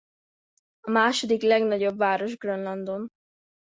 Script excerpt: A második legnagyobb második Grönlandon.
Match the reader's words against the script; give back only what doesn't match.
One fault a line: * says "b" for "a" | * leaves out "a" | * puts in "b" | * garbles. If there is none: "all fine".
* says "város" for "második"